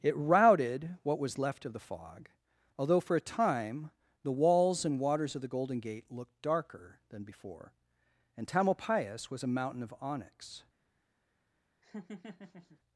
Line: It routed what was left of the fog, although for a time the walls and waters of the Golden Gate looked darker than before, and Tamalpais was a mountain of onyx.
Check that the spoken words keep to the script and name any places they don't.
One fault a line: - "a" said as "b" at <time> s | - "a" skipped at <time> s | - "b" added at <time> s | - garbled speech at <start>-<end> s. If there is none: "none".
none